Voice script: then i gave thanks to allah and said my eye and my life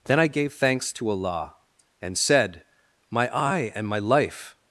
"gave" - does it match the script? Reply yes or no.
yes